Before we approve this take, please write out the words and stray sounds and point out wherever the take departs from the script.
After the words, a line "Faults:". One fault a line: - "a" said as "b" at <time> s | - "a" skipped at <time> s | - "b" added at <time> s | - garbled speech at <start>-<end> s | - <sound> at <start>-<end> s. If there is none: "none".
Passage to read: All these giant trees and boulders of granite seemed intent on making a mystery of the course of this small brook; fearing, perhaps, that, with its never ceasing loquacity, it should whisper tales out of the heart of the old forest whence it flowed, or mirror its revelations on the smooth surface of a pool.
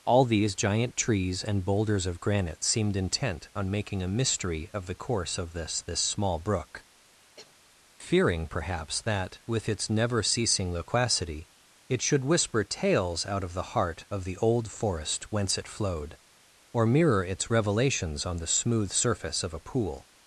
All these giant trees and boulders of granite seemed intent on making a mystery of the course of this this small brook; fearing, perhaps, that, with its never ceasing loquacity, it should whisper tales out of the heart of the old forest whence it flowed, or mirror its revelations on the smooth surface of a pool.
Faults:
- "this" added at 5.8 s
- cough at 7.4-7.6 s